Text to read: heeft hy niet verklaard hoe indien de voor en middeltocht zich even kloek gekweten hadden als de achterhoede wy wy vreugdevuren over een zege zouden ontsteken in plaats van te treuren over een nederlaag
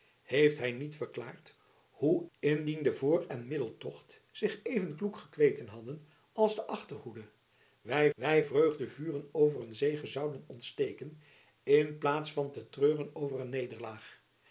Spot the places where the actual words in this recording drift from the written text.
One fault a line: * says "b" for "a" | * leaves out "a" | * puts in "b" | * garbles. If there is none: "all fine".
all fine